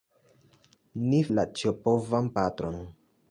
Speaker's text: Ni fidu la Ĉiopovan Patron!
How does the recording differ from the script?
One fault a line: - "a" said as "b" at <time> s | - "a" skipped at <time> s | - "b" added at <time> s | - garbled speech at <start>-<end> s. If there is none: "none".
- "fidu" skipped at 1.2 s